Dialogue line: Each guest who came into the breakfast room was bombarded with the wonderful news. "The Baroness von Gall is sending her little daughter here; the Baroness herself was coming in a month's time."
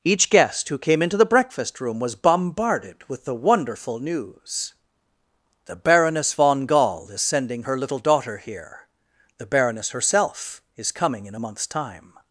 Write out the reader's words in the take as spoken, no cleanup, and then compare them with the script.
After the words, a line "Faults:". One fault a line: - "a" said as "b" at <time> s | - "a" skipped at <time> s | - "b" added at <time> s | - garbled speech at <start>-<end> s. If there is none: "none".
Each guest who came into the breakfast room was bombarded with the wonderful news. "The Baroness von Gall is sending her little daughter here; the Baroness herself is coming in a month's time."
Faults:
- "was" said as "is" at 10.8 s